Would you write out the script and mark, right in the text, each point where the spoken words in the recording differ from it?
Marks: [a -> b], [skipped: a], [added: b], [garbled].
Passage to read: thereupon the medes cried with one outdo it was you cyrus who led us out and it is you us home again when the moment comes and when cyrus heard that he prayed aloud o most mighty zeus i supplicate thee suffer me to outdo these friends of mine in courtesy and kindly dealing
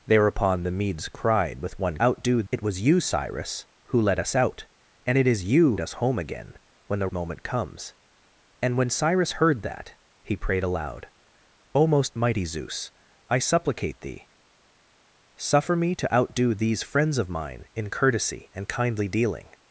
thereupon the medes cried with one outdo it was you cyrus who led us out and it is you us home again when the moment comes and when cyrus heard that he prayed aloud o most mighty zeus i supplicate thee suffer me to outdo these friends of mine in courtesy and kindly dealing